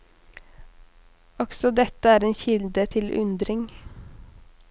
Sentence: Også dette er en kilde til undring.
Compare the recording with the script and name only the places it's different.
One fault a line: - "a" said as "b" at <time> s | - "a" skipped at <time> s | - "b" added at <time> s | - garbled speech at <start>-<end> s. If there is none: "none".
none